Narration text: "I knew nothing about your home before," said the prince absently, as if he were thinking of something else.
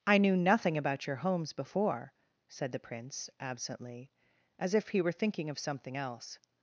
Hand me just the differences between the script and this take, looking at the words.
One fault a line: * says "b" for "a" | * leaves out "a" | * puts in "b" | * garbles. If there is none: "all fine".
* says "homes" for "home"